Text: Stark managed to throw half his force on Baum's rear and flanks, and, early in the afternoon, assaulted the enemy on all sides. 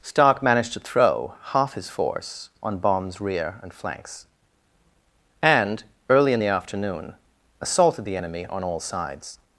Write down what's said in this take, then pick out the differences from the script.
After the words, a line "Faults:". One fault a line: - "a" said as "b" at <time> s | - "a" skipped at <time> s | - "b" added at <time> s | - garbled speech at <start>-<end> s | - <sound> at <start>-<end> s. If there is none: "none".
Stark managed to throw half his force on Baum's rear and flanks, and, early in the afternoon, assaulted the enemy on all sides.
Faults:
none